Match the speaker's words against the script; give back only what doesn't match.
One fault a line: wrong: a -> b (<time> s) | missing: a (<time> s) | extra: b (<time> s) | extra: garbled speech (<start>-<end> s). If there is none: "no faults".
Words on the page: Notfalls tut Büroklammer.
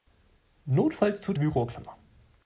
no faults